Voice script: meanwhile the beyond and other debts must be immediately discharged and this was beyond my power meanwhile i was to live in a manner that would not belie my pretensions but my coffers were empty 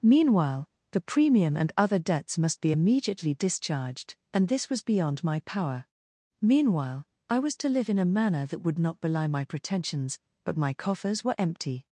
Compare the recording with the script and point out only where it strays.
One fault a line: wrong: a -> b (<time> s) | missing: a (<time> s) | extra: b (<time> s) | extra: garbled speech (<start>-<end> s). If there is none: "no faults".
wrong: beyond -> premium (1.0 s)